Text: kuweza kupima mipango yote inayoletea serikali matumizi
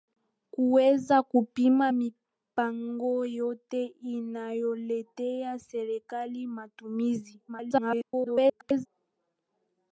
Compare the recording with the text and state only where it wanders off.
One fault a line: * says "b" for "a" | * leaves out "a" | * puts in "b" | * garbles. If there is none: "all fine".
* garbles